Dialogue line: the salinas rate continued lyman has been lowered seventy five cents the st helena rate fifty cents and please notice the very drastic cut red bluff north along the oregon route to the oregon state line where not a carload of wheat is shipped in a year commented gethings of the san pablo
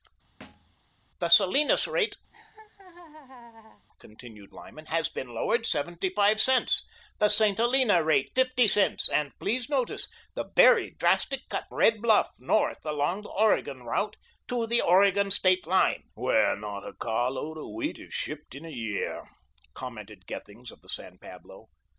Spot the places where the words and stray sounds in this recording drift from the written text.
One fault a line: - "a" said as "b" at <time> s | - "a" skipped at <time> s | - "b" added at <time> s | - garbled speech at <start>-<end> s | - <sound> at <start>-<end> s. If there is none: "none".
- thud at 0.4-0.8 s
- laugh at 2.3-3.9 s